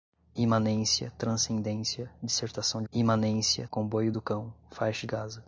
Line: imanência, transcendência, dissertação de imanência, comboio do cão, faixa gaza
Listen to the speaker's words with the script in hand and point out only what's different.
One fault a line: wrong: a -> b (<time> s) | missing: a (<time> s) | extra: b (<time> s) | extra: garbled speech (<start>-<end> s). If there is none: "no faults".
no faults